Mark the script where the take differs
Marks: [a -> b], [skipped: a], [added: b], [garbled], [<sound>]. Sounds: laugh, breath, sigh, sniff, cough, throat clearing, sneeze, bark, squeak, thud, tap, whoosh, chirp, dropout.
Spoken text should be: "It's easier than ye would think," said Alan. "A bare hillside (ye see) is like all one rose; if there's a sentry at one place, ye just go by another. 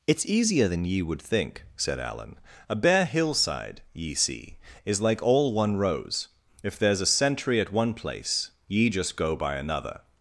"It's easier than ye would think," said Alan. "A bare hillside (ye see) is like all one rose; if there's a sentry at one place, ye just go by another.